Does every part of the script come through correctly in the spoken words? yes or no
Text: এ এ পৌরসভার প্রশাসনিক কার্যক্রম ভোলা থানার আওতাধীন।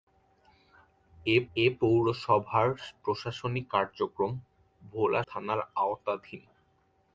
yes